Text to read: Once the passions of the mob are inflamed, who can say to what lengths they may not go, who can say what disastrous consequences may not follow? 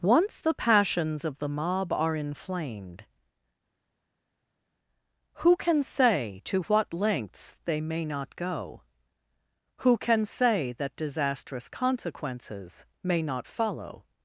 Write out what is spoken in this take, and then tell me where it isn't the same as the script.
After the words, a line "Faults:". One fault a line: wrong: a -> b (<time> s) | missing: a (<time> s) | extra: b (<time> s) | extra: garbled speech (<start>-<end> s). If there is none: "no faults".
Once the passions of the mob are inflamed, who can say to what lengths they may not go, who can say that disastrous consequences may not follow?
Faults:
wrong: what -> that (10.7 s)